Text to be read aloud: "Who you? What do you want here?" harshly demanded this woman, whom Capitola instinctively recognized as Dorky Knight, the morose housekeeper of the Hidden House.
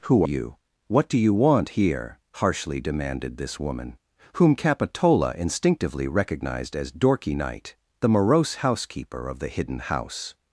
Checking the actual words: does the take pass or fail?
pass